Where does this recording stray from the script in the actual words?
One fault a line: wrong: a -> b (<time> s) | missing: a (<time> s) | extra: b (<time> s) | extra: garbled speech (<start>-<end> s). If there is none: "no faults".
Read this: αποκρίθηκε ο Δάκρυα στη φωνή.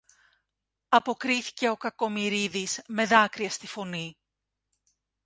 extra: Κακομοιρίδης με (1.8 s)